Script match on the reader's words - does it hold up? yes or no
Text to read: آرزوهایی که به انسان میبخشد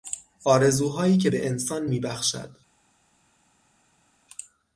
yes